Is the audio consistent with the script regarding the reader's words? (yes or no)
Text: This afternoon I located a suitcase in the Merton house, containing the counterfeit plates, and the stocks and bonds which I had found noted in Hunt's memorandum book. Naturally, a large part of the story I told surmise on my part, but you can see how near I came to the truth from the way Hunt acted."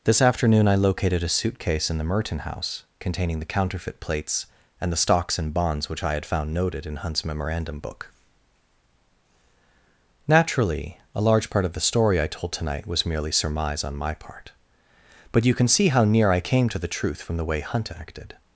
no